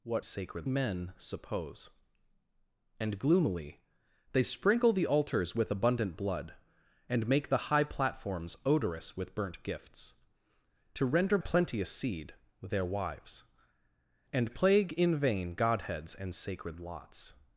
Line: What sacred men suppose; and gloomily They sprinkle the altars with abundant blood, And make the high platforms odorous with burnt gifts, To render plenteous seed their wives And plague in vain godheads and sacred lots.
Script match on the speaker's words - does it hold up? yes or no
yes